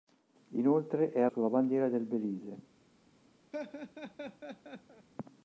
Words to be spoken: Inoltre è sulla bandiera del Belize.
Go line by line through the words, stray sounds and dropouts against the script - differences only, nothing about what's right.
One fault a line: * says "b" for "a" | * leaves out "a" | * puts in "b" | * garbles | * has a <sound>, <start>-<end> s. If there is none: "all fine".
* has a laugh, 3.5-5.1 s